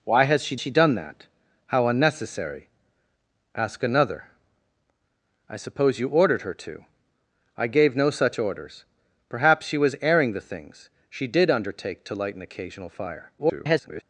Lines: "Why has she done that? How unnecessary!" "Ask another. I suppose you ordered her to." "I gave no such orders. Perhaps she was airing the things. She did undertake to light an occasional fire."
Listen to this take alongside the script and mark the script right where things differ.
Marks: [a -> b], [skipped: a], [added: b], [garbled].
"Why has she [added: she] done that? How unnecessary!" "Ask another. I suppose you ordered her to." "I gave no such orders. Perhaps she was airing the things. She did undertake to light an occasional fire." [garbled]